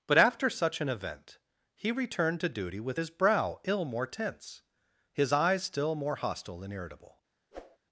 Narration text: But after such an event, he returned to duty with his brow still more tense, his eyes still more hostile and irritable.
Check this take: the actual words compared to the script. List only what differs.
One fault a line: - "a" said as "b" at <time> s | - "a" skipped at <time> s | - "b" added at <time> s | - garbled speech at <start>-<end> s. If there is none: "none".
- "still" said as "ill" at 3.6 s